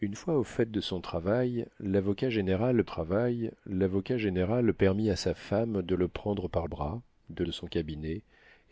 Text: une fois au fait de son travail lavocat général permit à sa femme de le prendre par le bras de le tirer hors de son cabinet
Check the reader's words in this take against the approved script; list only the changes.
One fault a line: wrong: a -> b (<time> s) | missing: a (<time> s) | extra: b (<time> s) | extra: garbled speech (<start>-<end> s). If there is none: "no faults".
extra: travail lavocat général (2.8 s)
missing: le (6.7 s)
missing: le tirer hors (7.4 s)